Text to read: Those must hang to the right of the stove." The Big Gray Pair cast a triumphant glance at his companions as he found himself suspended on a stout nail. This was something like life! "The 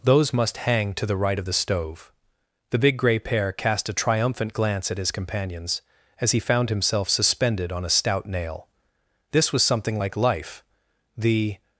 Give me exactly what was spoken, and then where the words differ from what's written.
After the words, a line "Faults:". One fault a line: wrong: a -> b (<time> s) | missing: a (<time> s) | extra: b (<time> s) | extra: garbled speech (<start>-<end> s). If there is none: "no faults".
Those must hang to the right of the stove." The Big Gray Pair cast a triumphant glance at his companions as he found himself suspended on a stout nail. This was something like life! "The
Faults:
no faults